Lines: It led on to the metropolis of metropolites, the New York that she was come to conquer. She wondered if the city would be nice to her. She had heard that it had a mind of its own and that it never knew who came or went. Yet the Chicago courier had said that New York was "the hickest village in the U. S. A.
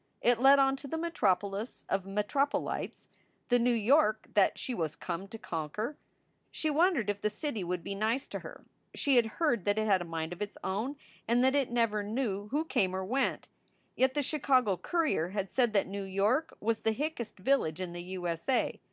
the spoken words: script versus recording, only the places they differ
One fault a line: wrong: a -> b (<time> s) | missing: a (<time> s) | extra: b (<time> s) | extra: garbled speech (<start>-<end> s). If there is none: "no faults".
no faults